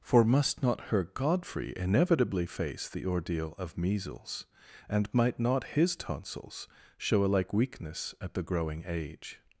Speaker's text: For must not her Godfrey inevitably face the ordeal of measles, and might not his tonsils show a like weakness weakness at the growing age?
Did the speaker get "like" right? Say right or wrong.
right